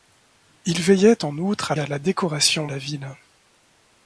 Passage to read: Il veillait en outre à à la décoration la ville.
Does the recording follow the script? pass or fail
pass